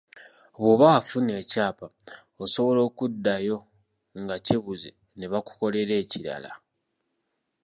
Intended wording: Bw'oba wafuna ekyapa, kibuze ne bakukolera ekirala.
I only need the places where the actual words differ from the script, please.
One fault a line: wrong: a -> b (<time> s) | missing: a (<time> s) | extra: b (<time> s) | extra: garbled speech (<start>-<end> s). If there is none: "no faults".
extra: osobola okuddayo nga (2.4 s)